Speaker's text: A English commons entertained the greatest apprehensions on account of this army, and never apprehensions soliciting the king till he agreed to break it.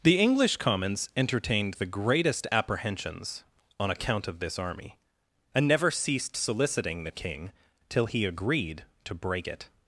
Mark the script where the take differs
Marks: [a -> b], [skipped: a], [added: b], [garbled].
[A -> The] English commons entertained the greatest apprehensions on account of this army, and never [apprehensions -> ceased] soliciting the king till he agreed to break it.